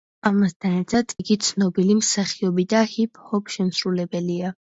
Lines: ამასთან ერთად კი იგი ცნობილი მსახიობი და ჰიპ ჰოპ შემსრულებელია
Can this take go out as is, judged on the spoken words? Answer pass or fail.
fail